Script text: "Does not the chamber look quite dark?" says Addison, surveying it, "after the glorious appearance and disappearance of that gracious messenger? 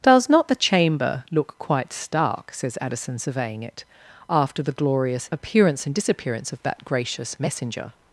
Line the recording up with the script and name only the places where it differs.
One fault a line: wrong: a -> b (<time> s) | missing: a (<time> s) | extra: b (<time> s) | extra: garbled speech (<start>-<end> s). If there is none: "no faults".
wrong: dark -> stark (1.9 s)